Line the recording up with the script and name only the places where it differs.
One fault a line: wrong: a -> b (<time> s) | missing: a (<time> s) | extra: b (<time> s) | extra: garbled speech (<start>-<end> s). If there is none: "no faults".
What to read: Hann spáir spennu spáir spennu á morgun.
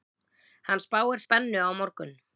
missing: spáir spennu (1.6 s)